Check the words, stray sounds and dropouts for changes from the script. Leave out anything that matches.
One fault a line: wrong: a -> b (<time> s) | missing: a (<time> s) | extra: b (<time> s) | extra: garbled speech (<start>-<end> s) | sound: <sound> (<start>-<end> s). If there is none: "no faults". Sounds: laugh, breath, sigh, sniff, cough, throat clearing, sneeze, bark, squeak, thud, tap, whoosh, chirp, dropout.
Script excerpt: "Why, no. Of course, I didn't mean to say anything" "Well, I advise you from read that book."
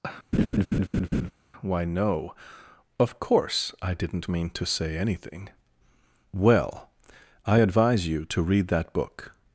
sound: laugh (0.3-1.3 s)
wrong: from -> to (8.2 s)